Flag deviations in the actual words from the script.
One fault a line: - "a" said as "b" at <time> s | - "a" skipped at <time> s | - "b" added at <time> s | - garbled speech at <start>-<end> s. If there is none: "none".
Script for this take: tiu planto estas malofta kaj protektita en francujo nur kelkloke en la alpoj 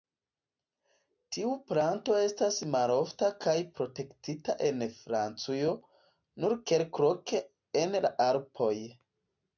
none